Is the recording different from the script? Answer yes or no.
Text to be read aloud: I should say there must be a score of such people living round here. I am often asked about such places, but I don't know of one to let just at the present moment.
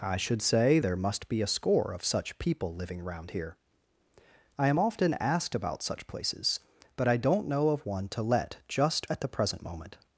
no